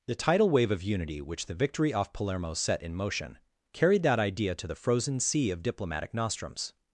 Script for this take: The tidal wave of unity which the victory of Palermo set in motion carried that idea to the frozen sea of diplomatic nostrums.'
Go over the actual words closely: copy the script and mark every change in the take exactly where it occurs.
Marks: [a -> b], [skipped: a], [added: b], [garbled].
The tidal wave of unity which the victory [of -> off] Palermo set in motion carried that idea to the frozen sea of diplomatic nostrums.'